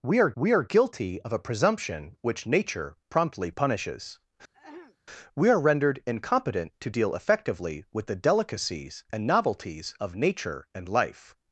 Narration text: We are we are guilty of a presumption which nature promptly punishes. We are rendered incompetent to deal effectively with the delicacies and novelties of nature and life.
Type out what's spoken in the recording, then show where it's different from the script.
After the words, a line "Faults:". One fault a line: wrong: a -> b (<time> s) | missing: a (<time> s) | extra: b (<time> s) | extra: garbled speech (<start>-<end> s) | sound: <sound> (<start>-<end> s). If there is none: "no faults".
We are we are guilty of a presumption which nature promptly punishes. We are rendered incompetent to deal effectively with the delicacies and novelties of nature and life.
Faults:
sound: throat clearing (4.5-5.0 s)